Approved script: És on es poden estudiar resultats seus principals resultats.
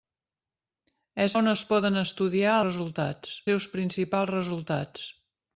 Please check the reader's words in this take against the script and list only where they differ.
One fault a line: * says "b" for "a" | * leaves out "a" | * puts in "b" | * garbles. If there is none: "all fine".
all fine